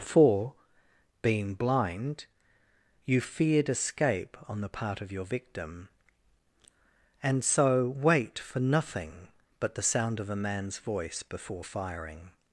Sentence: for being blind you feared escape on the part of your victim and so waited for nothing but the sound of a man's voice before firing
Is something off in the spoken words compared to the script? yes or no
yes